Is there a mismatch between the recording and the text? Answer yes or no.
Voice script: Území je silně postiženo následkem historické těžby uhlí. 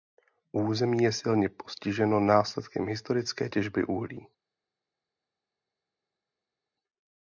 no